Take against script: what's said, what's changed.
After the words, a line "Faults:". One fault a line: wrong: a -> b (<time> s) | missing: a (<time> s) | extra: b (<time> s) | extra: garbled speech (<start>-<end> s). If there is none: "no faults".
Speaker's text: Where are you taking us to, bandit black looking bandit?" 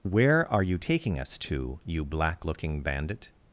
Where are you taking us to, you black looking bandit?"
Faults:
wrong: bandit -> you (1.9 s)